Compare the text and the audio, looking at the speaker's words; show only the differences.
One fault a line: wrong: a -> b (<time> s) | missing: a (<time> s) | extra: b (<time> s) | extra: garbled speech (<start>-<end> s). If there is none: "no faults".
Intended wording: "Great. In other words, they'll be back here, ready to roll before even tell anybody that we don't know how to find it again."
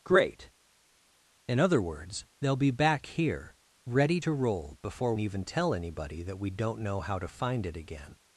no faults